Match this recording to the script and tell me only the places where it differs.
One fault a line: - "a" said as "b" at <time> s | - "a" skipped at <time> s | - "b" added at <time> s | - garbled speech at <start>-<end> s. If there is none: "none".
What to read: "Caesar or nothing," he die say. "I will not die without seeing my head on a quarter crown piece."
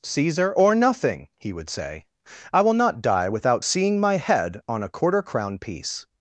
- "die" said as "would" at 1.5 s